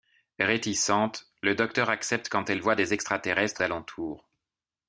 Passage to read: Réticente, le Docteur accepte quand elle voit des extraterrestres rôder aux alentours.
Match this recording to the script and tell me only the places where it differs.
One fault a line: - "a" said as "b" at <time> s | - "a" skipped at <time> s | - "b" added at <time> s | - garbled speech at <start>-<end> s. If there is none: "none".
- "rôder aux" skipped at 3.6 s